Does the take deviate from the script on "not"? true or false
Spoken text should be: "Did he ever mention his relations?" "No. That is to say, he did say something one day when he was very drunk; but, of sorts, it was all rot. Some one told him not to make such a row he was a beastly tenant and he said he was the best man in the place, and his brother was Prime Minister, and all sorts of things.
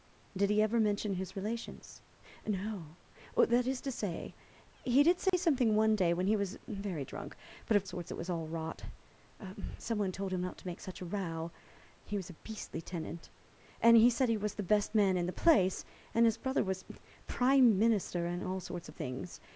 false